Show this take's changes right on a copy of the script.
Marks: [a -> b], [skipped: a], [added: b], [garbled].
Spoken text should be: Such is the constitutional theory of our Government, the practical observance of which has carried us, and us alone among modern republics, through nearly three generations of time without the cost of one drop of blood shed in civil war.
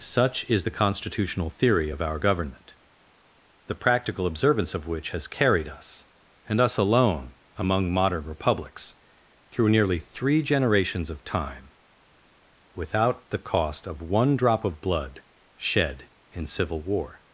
Such is the constitutional theory of our Government, the practical observance of which has carried us, and us alone among modern republics, through nearly three generations of time without the cost of one drop of blood shed in civil war.